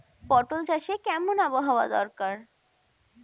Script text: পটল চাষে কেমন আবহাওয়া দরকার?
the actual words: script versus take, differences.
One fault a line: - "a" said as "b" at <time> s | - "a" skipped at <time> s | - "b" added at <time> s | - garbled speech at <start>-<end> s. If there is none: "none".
none